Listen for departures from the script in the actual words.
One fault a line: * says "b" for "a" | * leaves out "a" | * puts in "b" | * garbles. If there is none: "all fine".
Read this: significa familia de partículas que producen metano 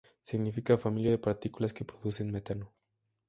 all fine